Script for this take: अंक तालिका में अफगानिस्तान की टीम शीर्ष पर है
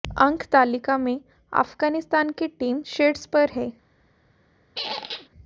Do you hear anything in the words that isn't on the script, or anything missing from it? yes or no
no